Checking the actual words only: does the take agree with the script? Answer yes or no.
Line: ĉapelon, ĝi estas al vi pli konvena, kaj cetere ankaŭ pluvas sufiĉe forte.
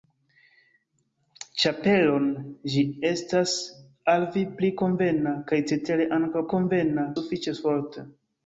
no